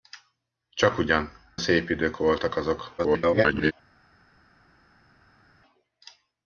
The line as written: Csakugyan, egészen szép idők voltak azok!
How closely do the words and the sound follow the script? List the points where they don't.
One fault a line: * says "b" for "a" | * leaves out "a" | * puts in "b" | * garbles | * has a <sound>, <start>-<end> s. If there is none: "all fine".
* leaves out "egészen"
* garbles